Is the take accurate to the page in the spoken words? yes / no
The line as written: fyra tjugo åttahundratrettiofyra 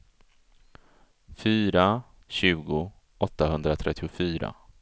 yes